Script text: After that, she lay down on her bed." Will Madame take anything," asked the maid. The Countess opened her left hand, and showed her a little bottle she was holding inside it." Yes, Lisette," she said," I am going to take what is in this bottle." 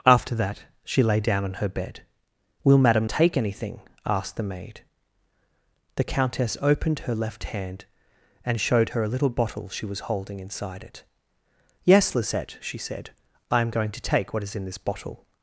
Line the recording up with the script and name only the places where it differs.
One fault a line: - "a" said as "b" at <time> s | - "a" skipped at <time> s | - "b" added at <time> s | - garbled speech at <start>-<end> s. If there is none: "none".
none